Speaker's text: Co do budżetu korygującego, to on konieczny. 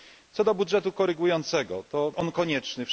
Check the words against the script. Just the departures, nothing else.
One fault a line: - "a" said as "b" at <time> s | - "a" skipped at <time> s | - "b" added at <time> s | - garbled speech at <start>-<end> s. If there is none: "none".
none